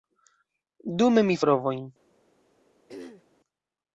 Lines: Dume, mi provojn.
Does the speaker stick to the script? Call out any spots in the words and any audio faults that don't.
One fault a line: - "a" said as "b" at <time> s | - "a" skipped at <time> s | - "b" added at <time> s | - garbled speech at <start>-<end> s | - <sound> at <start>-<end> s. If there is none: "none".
- throat clearing at 2.9-3.3 s